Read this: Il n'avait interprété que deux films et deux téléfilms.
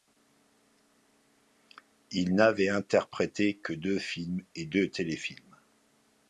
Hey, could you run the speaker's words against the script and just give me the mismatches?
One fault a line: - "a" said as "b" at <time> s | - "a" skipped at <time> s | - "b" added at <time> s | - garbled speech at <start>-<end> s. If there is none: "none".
none